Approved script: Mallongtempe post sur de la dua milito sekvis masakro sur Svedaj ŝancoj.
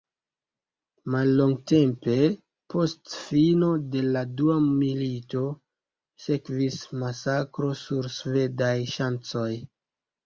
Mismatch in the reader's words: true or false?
true